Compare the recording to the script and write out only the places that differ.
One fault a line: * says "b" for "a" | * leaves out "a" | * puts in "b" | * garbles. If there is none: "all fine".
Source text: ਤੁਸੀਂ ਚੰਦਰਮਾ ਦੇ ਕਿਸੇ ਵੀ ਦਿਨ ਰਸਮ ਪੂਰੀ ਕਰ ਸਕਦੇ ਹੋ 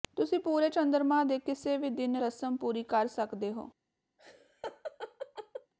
* puts in "ਪੂਰੇ"